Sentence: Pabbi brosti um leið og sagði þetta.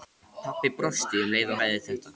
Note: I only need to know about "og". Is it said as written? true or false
true